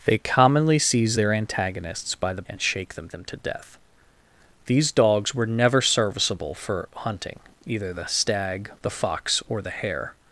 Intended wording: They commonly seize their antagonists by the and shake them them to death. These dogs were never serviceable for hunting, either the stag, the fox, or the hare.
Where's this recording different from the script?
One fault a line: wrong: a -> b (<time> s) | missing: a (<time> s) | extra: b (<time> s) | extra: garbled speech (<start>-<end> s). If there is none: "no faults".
no faults